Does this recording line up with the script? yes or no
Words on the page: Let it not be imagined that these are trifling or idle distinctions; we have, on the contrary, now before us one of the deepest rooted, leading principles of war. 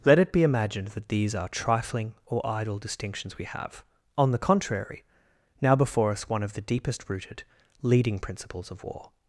no